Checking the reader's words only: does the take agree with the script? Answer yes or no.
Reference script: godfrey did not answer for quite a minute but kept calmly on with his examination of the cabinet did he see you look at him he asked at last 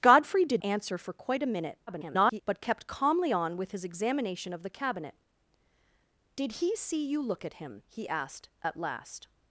no